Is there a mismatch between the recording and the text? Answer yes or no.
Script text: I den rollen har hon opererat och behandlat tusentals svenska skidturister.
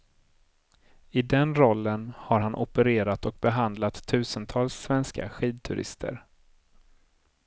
yes